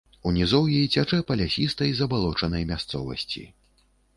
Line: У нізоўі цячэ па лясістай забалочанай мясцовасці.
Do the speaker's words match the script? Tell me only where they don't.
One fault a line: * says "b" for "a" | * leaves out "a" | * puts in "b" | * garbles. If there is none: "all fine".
all fine